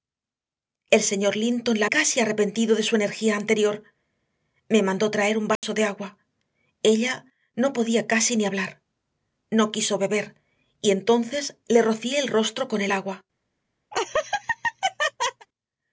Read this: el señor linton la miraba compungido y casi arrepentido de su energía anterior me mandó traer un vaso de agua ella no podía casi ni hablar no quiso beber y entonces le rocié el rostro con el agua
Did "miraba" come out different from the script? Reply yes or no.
yes